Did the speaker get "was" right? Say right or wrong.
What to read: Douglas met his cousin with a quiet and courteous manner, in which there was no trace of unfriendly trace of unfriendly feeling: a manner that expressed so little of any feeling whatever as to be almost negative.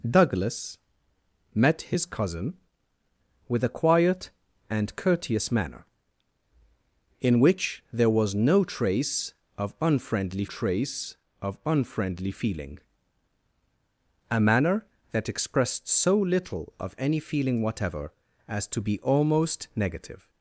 right